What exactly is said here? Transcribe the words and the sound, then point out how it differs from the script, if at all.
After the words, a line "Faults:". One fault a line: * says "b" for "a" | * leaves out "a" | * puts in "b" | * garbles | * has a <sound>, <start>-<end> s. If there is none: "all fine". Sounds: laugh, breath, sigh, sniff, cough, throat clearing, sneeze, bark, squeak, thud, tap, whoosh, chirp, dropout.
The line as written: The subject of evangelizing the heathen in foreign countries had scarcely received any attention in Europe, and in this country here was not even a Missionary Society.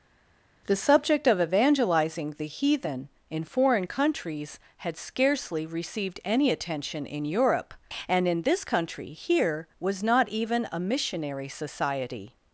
The subject of evangelizing the heathen in foreign countries had scarcely received any attention in Europe, and in this country here was not even a Missionary Society.
Faults:
all fine